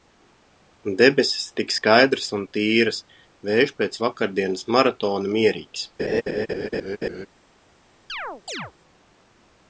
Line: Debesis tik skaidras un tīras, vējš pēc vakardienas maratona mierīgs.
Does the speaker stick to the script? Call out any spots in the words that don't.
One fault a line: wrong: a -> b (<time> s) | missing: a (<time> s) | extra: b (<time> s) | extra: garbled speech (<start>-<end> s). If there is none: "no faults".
no faults